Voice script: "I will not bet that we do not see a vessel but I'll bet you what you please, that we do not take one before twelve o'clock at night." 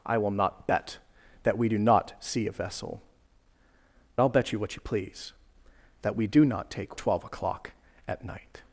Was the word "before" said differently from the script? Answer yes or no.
yes